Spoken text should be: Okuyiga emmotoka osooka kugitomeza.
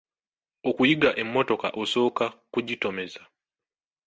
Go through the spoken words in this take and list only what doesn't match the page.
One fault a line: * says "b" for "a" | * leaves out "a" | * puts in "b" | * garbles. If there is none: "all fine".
all fine